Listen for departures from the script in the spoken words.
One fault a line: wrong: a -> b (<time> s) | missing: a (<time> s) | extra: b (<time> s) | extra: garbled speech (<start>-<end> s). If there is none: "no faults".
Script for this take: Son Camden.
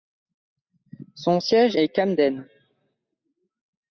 extra: siège est (1.4 s)